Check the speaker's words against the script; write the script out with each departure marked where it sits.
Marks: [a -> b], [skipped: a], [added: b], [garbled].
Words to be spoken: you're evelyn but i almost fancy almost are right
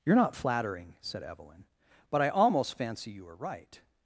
you're [added: not flattering said] evelyn but i almost fancy [almost -> you] are right